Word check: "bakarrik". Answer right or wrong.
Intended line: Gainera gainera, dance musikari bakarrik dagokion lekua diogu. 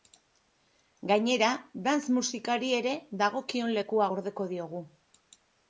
wrong